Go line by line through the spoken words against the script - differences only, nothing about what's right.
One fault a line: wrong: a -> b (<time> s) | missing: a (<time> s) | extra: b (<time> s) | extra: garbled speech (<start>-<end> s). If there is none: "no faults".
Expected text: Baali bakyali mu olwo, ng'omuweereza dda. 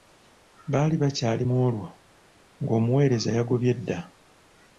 extra: yagobye (3.4 s)